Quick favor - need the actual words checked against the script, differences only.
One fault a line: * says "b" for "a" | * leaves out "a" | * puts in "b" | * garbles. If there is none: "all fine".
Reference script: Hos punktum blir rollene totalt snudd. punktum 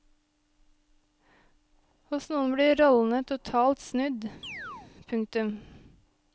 * says "noen" for "punktum"